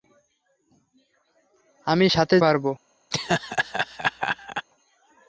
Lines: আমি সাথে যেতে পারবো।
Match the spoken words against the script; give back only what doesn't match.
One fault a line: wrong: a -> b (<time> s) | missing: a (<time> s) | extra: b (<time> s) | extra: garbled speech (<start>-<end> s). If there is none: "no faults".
missing: যেতে (2.4 s)